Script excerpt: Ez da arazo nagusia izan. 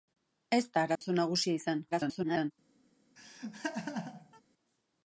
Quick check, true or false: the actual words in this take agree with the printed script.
false